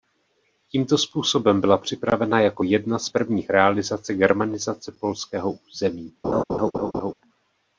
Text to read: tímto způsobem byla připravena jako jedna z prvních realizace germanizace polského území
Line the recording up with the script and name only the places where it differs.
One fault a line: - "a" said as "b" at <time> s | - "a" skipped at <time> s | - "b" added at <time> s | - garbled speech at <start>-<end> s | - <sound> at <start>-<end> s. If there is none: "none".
- laugh at 6.2-7.1 s